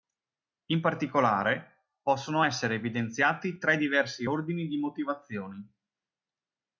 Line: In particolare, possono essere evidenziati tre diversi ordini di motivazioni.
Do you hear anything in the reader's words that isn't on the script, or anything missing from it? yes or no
no